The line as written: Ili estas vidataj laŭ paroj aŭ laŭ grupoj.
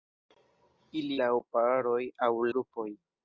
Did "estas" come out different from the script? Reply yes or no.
yes